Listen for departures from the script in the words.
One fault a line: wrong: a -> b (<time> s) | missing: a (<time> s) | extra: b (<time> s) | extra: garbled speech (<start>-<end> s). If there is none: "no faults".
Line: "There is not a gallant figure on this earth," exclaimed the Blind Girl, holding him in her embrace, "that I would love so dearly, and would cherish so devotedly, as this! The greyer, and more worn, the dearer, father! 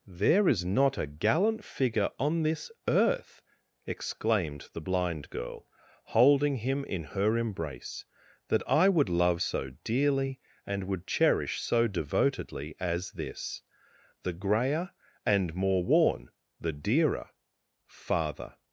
no faults